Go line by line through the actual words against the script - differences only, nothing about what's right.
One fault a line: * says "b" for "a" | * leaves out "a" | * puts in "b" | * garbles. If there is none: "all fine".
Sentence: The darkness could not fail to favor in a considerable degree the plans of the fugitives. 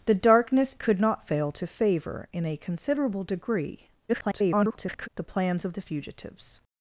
* garbles